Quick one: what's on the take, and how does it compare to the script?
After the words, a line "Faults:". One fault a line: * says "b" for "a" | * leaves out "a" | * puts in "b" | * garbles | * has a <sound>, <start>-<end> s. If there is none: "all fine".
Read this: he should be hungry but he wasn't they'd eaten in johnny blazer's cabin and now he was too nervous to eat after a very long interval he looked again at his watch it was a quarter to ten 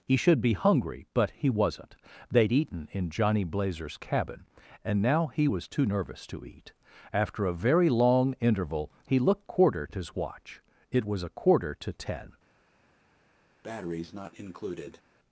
he should be hungry but he wasn't they'd eaten in johnny blazer's cabin and now he was too nervous to eat after a very long interval he looked quarter at his watch it was a quarter to ten
Faults:
* says "quarter" for "again"
* has a breath, 13.6-15.0 s